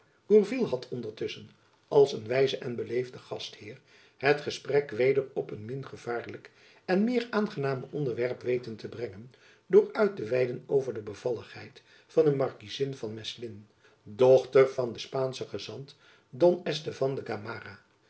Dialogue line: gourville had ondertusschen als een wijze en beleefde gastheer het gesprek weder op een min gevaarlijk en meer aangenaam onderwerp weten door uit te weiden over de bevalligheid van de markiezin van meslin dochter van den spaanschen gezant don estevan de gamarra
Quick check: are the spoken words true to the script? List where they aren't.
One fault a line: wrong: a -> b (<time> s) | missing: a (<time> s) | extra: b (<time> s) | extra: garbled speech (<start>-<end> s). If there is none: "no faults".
extra: te brengen (8.8 s)